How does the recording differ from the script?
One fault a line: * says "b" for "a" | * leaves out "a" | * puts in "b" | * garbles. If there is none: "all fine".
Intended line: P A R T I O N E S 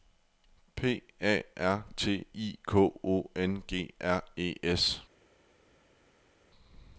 * puts in "K"
* puts in "G R"